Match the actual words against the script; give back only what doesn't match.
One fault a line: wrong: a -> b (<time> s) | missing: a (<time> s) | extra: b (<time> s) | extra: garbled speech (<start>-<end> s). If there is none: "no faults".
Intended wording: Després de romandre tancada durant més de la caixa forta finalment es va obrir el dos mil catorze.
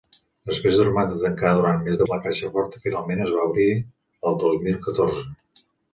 no faults